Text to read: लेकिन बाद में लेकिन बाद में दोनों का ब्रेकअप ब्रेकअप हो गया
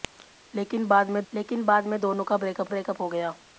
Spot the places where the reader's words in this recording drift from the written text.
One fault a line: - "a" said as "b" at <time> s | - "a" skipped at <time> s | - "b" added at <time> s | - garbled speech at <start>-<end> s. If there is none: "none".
none